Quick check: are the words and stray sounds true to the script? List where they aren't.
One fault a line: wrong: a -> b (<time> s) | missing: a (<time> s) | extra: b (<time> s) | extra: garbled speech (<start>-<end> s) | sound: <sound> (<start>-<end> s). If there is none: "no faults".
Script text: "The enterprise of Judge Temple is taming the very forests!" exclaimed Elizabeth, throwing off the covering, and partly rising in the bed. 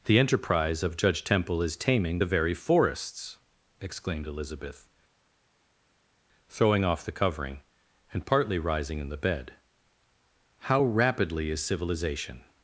extra: How rapidly is civilization (10.6 s)